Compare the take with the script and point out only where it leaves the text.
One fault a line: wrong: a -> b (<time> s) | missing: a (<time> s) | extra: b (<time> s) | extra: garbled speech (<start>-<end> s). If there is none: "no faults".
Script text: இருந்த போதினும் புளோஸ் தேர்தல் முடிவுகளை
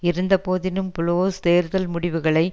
no faults